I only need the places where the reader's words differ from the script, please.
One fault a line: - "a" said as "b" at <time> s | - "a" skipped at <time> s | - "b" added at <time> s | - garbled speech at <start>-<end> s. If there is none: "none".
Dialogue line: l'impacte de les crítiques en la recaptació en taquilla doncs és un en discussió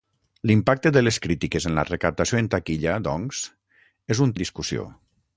none